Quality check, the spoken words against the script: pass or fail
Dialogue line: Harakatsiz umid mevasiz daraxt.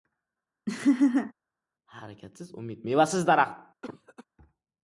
pass